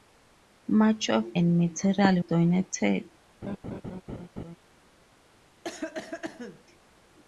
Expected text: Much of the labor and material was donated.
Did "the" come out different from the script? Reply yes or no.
yes